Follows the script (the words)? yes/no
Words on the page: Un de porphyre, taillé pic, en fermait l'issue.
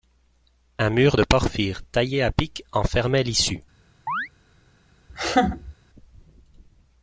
no